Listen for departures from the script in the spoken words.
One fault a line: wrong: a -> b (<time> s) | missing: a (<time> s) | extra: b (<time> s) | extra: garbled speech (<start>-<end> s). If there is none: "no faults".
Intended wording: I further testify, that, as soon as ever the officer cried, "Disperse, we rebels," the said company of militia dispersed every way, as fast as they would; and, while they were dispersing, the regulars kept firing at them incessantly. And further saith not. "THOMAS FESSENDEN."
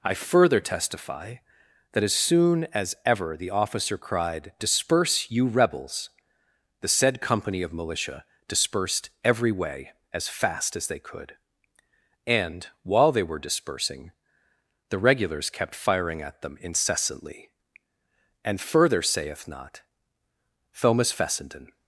wrong: we -> you (5.3 s)
wrong: would -> could (11.0 s)